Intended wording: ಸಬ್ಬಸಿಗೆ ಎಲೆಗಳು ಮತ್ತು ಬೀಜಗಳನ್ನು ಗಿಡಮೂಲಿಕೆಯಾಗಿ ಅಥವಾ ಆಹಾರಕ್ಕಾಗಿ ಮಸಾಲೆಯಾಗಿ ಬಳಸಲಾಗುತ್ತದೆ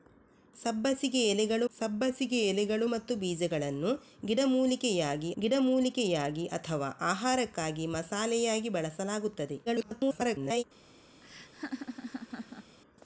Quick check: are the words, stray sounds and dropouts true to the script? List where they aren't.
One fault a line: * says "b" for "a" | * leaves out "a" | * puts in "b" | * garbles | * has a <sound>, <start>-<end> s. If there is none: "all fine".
* puts in "ಸಬ್ಬಸಿಗೆ ಎಲೆಗಳು"
* puts in "ಗಿಡಮೂಲಿಕೆಯಾಗಿ"
* garbles
* has a laugh, 11.2-12.8 s